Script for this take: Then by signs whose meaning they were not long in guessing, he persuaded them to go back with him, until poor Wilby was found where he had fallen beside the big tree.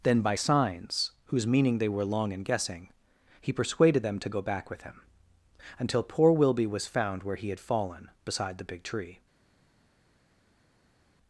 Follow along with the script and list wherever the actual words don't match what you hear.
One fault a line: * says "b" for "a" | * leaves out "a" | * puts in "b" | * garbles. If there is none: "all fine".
* leaves out "not"